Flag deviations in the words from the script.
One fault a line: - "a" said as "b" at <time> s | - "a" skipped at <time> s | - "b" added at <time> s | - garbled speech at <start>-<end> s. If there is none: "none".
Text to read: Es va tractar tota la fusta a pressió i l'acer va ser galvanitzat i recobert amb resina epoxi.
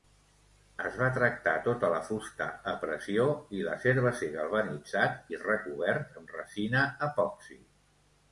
none